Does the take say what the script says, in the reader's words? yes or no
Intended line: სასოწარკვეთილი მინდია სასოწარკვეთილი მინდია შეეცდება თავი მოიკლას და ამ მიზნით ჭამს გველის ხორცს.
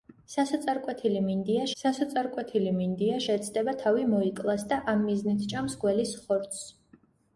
yes